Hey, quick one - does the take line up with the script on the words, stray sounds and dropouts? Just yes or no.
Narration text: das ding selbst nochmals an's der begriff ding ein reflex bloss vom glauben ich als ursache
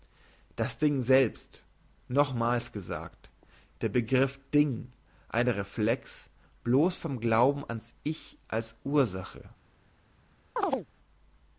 no